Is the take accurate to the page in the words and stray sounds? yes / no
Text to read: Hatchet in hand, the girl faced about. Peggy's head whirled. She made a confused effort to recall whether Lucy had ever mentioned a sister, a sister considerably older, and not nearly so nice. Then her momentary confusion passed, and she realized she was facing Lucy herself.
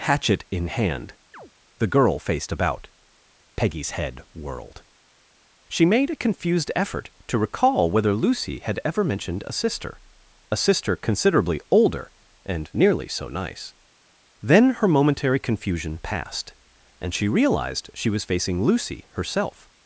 no